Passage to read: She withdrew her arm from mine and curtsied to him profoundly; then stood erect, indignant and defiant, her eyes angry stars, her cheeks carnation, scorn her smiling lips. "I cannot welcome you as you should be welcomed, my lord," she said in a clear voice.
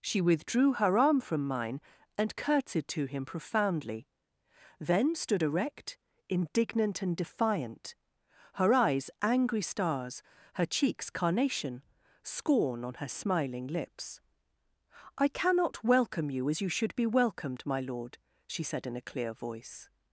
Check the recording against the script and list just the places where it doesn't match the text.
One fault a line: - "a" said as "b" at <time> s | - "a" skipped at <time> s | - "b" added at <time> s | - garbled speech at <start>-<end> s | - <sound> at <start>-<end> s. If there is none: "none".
- "on" added at 12.8 s